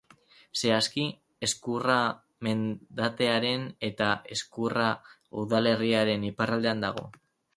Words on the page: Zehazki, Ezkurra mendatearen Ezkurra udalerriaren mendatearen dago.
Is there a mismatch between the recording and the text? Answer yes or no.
yes